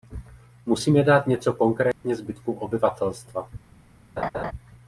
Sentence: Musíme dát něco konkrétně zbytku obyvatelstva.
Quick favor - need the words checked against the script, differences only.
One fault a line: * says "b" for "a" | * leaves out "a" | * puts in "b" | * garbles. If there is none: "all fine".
all fine